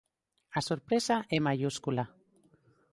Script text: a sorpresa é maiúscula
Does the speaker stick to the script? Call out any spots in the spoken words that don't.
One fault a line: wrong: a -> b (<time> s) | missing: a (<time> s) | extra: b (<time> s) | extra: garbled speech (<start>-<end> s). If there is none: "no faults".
no faults